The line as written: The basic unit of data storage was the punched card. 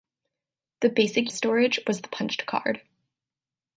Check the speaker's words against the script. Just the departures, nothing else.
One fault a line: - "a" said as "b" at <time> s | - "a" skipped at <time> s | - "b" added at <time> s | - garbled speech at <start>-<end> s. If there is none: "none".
- "unit of data" skipped at 1.3 s